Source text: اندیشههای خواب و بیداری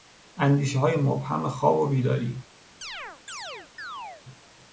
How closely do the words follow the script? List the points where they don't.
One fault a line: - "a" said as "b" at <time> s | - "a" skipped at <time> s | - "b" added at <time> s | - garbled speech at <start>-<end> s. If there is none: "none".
- "مبهم" added at 0.9 s